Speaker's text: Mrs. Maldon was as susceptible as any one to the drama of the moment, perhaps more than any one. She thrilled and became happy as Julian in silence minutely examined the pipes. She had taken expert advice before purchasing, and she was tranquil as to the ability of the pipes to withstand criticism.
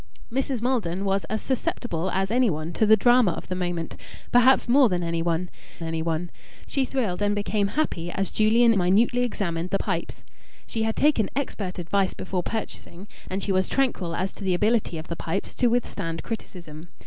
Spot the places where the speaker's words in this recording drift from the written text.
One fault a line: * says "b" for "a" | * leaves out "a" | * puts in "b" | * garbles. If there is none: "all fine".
* puts in "any one"
* leaves out "in silence"